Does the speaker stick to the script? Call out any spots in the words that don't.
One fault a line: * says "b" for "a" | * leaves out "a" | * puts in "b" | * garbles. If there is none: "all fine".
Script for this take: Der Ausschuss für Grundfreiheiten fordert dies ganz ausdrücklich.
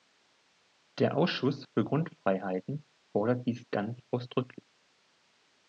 all fine